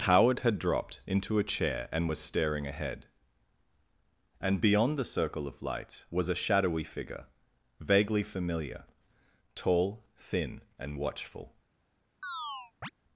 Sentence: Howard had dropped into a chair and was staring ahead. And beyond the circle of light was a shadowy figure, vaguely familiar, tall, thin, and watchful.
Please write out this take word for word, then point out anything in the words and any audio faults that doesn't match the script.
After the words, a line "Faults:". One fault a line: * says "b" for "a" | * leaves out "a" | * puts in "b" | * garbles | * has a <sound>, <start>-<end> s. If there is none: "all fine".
Howard had dropped into a chair and was staring ahead. And beyond the circle of light was a shadowy figure, vaguely familiar, tall, thin, and watchful.
Faults:
* has a chirp, 12.2-12.9 s